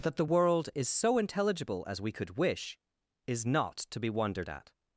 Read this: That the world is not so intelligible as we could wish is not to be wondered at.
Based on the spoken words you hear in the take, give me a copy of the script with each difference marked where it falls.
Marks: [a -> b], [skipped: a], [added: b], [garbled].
That the world is [skipped: not] so intelligible as we could wish is not to be wondered at.